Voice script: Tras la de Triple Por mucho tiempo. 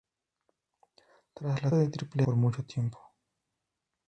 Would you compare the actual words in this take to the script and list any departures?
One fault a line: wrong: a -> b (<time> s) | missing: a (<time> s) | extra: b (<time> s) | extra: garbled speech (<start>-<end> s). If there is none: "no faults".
no faults